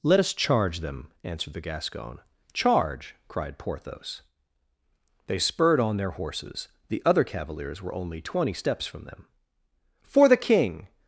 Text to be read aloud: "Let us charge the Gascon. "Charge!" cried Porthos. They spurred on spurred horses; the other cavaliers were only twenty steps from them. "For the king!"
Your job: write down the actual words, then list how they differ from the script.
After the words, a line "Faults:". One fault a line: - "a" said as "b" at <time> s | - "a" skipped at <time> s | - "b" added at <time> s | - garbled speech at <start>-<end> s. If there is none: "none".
"Let us charge them," answered the Gascon. "Charge!" cried Porthos. They spurred on their horses; the other cavaliers were only twenty steps from them. "For the king!"
Faults:
- "them answered" added at 0.8 s
- "spurred" said as "their" at 6.0 s